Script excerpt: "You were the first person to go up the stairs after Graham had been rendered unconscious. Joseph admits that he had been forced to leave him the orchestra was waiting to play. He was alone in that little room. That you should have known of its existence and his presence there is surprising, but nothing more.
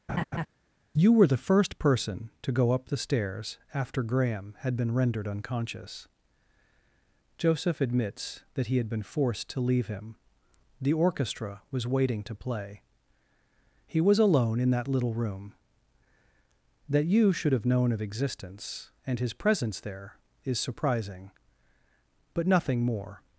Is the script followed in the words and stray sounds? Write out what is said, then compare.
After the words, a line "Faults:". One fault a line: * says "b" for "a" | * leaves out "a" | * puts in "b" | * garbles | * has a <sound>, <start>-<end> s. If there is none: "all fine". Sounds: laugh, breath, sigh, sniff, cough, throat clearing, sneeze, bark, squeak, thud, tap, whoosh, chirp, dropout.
"You were the first person to go up the stairs after Graham had been rendered unconscious. Joseph admits that he had been forced to leave him the orchestra was waiting to play. He was alone in that little room. That you should have known of existence and his presence there is surprising, but nothing more.
Faults:
* has a laugh, 0.1-0.5 s
* leaves out "its"